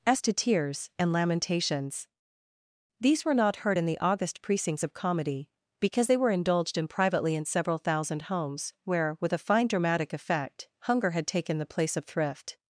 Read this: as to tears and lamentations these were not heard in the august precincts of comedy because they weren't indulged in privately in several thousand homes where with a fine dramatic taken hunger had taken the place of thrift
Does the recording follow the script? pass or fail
fail